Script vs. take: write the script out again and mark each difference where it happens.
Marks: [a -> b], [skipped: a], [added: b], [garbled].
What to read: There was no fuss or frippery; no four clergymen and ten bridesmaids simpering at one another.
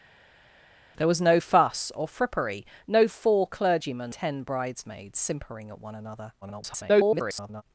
There was no fuss or frippery; no four clergymen [skipped: and] ten bridesmaids simpering at one another. [garbled]